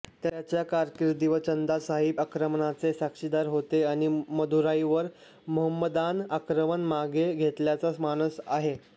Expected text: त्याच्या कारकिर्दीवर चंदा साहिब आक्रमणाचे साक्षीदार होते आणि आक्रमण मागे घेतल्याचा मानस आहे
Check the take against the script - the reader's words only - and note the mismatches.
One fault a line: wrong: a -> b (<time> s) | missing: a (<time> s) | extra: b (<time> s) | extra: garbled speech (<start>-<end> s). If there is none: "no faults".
extra: मदुराईवर मोहम्मदान (4.3 s)